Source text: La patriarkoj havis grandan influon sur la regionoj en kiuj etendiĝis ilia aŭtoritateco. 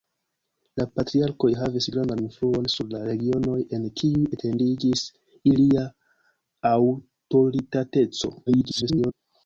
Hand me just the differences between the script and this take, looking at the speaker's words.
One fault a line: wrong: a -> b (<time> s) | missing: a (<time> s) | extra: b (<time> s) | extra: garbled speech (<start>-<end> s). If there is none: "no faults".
extra: garbled speech (8.5-9.1 s)